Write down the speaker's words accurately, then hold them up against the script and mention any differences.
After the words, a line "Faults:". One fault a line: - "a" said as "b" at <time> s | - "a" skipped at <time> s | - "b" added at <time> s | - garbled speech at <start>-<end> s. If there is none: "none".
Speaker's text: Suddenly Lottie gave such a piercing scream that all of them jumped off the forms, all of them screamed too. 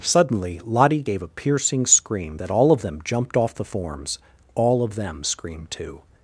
Suddenly Lottie gave a piercing scream that all of them jumped off the forms, all of them screamed too.
Faults:
- "such" skipped at 1.2 s